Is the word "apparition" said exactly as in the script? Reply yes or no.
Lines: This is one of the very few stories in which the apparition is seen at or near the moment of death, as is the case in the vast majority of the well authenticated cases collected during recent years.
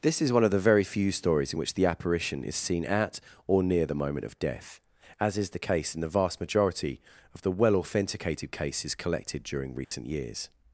yes